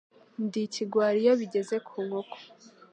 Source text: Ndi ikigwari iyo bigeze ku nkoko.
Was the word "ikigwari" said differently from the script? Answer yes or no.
no